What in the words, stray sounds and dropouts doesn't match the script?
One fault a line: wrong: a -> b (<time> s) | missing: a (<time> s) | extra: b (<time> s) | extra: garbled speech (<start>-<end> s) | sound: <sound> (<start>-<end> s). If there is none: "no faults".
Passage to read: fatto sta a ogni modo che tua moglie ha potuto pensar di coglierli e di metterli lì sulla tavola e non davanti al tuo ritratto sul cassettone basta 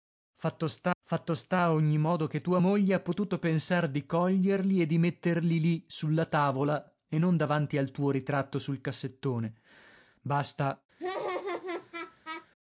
extra: fatto sta (1.0 s)
sound: laugh (11.0-12.5 s)